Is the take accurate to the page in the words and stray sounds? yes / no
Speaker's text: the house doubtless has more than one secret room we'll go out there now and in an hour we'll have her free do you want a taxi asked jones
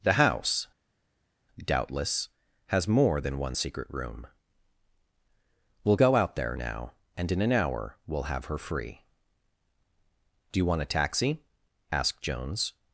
yes